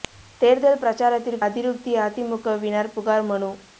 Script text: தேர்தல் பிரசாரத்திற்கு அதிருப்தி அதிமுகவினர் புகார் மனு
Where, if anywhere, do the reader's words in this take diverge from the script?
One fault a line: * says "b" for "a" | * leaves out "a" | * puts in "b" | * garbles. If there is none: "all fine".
all fine